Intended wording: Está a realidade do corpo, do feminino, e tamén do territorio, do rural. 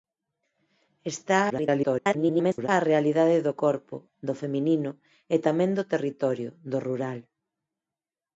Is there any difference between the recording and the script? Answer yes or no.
yes